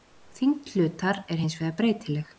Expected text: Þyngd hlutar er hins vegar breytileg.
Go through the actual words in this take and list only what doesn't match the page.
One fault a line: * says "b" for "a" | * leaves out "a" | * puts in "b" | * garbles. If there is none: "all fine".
all fine